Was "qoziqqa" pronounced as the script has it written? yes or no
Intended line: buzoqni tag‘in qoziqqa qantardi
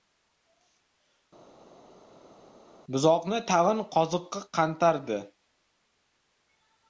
yes